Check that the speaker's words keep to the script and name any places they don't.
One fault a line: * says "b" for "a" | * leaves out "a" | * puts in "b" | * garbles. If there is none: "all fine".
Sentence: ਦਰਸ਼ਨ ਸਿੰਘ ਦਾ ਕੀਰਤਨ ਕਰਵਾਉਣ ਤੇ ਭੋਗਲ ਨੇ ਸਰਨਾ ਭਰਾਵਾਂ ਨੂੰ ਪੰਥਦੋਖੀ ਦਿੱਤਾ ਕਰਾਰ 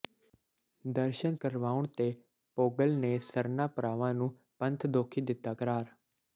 * leaves out "ਸਿੰਘ ਦਾ ਕੀਰਤਨ"